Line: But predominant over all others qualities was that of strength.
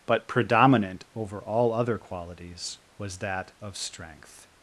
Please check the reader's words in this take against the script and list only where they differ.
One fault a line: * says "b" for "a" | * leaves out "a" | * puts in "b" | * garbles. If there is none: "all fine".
* says "other" for "others"